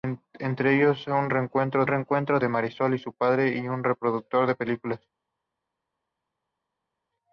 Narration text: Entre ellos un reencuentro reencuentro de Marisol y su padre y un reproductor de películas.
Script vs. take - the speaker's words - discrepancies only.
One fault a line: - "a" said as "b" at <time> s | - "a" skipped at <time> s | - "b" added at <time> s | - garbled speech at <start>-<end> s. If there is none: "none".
none